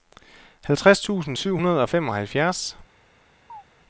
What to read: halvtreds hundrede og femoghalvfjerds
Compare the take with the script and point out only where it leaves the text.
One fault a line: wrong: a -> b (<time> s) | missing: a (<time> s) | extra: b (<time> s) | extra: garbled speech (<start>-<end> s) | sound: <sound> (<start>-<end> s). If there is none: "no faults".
extra: tusind syv (1.0 s)
sound: chirp (3.5-3.6 s)